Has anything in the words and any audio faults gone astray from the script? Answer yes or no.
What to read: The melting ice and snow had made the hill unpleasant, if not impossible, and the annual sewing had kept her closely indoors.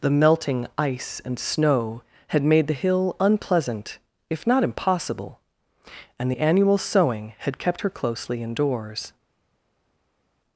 no